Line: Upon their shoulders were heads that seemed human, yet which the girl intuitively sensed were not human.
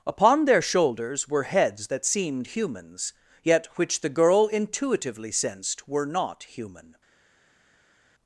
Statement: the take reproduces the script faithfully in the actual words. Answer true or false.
false